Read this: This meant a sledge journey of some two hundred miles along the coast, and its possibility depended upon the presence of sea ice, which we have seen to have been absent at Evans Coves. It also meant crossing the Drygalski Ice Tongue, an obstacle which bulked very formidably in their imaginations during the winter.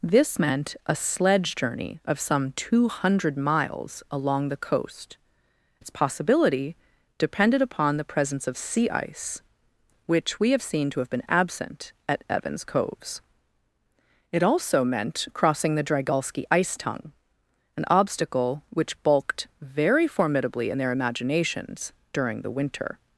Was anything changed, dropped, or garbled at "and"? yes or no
yes